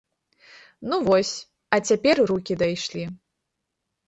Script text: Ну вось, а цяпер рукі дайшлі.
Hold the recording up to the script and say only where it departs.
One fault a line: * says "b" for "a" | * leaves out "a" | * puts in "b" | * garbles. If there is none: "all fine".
all fine